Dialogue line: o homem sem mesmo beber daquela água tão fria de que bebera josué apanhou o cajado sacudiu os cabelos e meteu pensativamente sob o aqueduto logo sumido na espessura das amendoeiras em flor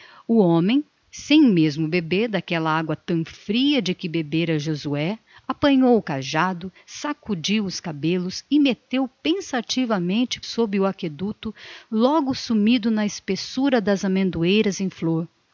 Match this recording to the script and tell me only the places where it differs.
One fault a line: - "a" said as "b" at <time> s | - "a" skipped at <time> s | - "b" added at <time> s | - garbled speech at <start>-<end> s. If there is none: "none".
none